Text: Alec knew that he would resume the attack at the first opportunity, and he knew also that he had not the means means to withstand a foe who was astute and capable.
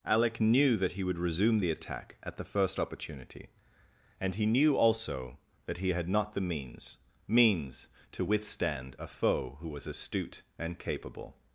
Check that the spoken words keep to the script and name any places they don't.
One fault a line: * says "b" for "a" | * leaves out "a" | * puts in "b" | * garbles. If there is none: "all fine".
all fine